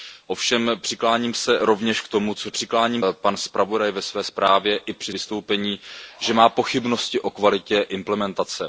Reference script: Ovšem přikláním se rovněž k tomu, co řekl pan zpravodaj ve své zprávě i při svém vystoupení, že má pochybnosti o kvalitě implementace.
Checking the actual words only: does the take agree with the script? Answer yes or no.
no